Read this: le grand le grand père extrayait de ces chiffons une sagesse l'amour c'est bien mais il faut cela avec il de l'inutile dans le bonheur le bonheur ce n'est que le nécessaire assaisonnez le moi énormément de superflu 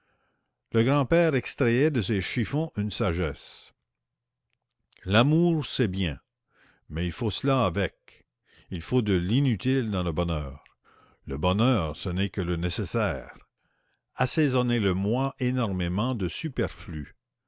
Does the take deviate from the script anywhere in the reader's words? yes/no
yes